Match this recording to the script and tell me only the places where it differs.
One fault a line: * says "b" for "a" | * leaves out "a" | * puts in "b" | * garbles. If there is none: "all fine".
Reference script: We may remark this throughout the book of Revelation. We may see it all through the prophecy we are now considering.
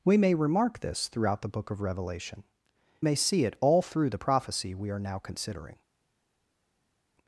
* leaves out "We"